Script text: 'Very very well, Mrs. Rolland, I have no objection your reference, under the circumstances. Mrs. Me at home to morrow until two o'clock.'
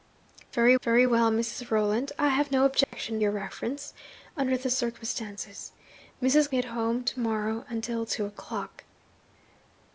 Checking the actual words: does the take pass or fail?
pass